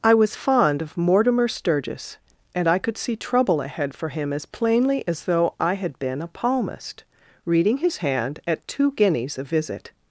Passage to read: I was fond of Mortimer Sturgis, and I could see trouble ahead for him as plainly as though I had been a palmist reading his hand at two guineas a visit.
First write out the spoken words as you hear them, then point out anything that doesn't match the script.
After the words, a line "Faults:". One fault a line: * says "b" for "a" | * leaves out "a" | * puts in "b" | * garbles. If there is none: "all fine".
I was fond of Mortimer Sturgis, and I could see trouble ahead for him as plainly as though I had been a palmist reading his hand at two guineas a visit.
Faults:
all fine